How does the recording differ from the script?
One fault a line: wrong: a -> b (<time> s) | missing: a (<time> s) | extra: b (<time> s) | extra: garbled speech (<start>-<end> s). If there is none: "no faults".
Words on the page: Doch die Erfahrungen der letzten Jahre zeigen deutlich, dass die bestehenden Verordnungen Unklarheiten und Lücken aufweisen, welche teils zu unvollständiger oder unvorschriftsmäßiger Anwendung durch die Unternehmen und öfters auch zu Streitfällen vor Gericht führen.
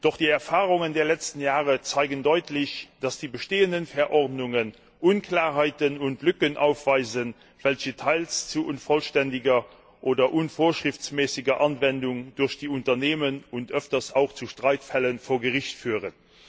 no faults